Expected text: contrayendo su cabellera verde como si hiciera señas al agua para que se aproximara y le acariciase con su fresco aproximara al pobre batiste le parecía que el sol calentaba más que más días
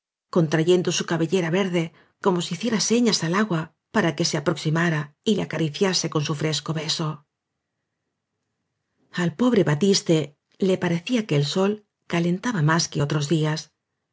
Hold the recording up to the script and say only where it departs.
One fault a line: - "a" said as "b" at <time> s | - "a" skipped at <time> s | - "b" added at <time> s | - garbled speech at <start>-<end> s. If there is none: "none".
- "aproximara" said as "beso" at 6.7 s
- "más" said as "otros" at 13.0 s